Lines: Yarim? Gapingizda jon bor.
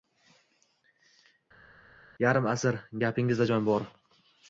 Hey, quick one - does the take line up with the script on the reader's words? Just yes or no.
no